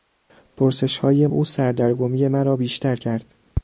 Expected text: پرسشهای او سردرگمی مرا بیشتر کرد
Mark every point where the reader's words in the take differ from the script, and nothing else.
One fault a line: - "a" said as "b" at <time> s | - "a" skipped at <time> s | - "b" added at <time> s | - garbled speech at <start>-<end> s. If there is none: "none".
none